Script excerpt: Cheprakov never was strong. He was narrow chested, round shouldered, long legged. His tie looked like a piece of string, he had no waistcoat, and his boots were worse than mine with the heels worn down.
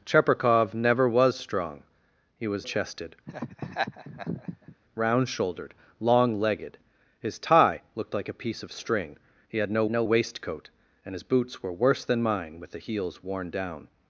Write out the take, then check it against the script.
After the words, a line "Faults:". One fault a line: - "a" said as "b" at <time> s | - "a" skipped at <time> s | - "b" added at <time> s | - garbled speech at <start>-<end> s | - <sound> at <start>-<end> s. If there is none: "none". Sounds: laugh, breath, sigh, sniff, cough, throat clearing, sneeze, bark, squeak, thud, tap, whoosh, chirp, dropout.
Cheprakov never was strong. He was chested, round shouldered, long legged. His tie looked like a piece of string, he had no no waistcoat, and his boots were worse than mine with the heels worn down.
Faults:
- "narrow" skipped at 2.7 s
- laugh at 3.3-4.8 s
- "no" added at 9.9 s